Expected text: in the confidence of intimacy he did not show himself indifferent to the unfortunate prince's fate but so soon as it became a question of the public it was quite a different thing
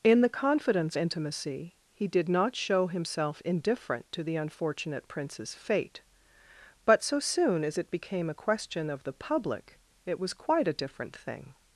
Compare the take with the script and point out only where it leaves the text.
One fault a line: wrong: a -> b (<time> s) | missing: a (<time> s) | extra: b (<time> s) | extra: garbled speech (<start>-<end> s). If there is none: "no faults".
missing: of (1.0 s)